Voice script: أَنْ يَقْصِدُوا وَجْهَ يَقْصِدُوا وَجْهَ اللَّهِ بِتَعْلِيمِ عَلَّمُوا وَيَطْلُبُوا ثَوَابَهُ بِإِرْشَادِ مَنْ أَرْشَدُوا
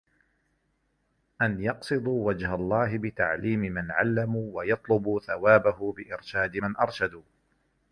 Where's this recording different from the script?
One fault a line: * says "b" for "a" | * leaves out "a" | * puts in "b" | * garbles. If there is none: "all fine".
* leaves out "يَقْصِدُوا وَجْهَ"
* puts in "مَنْ"